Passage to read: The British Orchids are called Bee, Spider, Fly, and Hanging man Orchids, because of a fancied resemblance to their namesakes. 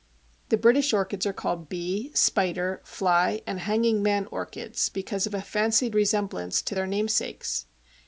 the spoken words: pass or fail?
pass